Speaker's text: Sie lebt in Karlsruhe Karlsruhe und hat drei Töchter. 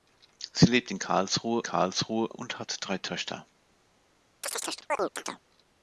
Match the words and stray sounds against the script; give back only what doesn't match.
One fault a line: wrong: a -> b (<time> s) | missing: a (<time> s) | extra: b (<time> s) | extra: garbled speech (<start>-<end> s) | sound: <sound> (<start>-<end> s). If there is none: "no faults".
sound: chirp (4.4-5.4 s)